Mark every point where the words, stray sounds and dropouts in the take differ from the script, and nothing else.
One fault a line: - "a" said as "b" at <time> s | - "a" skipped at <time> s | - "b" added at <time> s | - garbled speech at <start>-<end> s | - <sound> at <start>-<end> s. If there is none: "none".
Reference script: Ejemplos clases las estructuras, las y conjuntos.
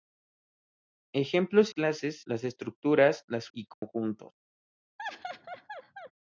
- dropout at 3.7-3.8 s
- laugh at 5.0-6.1 s